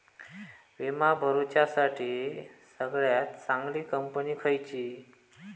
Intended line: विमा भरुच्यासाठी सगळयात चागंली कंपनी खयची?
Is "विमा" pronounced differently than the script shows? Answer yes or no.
no